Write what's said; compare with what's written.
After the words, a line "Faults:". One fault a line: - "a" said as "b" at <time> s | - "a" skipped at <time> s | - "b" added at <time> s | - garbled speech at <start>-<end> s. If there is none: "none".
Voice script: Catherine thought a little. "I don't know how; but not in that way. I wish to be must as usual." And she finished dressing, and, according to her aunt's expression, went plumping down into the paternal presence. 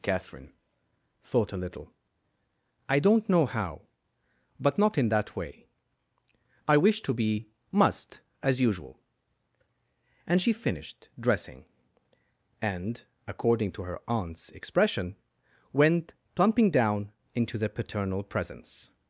Catherine thought a little. "I don't know how; but not in that way. I wish to be must as usual." And she finished dressing, and, according to her aunt's expression, went plumping down into the paternal presence.
Faults:
none